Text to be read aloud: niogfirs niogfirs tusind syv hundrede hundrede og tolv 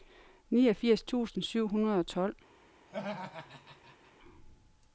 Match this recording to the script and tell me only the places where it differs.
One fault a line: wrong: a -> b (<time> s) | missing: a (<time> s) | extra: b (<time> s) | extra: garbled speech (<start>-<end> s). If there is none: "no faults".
missing: niogfirs (1.0 s)
missing: hundrede (2.0 s)